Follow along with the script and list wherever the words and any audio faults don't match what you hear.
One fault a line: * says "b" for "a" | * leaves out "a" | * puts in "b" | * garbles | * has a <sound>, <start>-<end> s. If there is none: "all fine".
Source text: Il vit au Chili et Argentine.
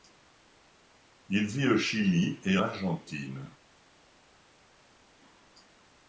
all fine